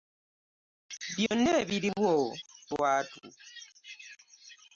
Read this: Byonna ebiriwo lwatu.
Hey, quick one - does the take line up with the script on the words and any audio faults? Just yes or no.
no